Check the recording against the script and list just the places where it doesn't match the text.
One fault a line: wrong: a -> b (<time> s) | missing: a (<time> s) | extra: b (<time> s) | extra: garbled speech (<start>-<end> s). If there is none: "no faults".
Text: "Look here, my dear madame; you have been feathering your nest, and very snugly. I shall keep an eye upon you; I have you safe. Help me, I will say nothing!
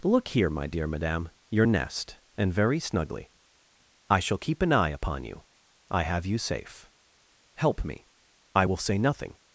missing: you have been feathering (1.3 s)